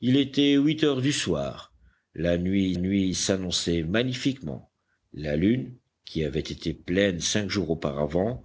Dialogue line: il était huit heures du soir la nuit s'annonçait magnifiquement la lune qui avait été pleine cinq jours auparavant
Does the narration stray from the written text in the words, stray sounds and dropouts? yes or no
yes